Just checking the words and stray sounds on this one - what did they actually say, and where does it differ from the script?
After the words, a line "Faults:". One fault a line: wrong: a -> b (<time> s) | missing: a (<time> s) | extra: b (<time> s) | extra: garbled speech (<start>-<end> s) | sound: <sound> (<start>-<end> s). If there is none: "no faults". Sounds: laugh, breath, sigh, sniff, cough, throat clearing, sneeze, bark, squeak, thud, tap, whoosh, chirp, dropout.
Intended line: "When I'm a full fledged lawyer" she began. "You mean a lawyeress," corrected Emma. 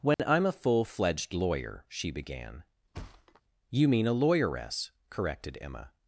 "When I'm a full fledged lawyer" she began. "You mean a lawyeress," corrected Emma.
Faults:
sound: dropout (0.1-0.2 s)
sound: thud (2.9-3.4 s)